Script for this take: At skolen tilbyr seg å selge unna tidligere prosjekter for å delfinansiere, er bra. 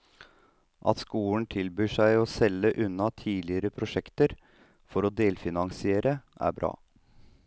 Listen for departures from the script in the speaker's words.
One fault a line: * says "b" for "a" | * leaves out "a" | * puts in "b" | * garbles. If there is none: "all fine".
all fine